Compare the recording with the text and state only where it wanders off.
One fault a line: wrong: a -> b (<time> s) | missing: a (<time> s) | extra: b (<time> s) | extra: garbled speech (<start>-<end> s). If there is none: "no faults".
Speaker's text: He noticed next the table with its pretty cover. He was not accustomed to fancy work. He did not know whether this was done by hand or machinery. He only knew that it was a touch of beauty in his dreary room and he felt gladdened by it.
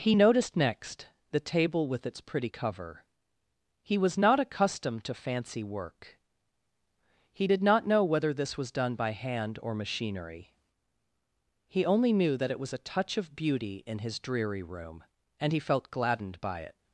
no faults